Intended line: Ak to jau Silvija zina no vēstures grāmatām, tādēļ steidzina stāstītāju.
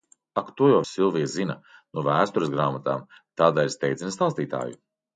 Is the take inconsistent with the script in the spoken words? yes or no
no